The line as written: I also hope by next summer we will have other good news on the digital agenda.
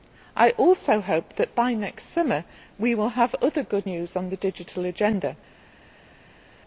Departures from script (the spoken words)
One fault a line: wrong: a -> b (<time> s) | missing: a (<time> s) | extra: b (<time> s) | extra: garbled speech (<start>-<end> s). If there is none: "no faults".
extra: that (1.4 s)